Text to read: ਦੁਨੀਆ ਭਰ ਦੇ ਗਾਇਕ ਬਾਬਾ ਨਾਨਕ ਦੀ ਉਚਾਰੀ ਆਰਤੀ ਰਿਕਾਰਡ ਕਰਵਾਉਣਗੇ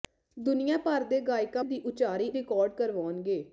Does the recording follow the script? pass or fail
fail